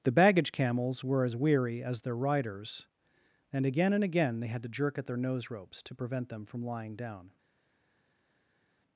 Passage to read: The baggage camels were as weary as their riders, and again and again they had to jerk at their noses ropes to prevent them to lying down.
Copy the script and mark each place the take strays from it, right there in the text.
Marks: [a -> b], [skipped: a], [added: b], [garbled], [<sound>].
The baggage camels were as weary as their riders, and again and again they had to jerk at their [noses -> nose] ropes to prevent them [to -> from] lying down.